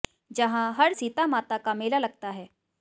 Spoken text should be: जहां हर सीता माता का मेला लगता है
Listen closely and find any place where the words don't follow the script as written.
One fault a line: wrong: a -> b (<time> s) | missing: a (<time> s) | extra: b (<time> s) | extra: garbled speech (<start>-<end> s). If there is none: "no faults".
no faults